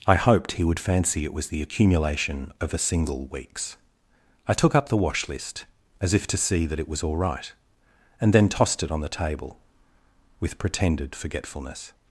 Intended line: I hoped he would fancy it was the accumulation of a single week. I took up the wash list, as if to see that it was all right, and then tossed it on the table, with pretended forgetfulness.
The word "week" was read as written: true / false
false